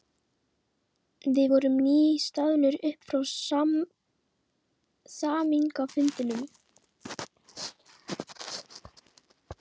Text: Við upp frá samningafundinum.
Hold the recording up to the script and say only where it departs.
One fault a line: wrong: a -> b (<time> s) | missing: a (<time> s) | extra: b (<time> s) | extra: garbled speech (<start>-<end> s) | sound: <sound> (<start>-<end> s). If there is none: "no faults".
extra: vorum nýstaðnir (1.5 s)